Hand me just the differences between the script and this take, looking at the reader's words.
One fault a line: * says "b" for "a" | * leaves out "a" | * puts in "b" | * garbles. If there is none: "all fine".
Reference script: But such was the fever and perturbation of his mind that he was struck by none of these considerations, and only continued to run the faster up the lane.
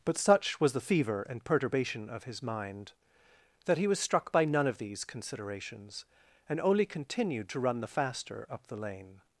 all fine